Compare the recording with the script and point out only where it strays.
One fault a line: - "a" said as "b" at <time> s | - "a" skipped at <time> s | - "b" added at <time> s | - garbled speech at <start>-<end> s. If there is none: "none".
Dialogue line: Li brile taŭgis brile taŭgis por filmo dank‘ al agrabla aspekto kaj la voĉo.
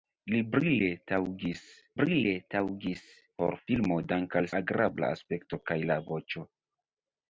none